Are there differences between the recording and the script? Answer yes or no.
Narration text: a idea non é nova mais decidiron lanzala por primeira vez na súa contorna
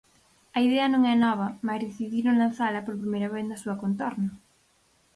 no